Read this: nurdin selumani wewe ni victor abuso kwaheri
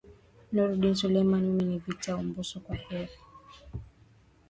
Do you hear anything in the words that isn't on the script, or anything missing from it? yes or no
yes